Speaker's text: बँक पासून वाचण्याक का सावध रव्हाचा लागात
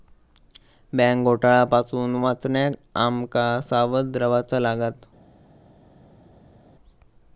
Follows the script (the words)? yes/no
no